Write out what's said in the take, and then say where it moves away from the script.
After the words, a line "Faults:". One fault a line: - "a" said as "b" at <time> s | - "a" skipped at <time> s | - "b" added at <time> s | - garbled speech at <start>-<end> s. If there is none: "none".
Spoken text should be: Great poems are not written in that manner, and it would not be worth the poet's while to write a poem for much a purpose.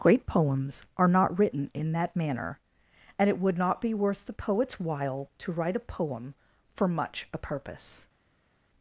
Great poems are not written in that manner, and it would not be worth the poet's while to write a poem for much a purpose.
Faults:
none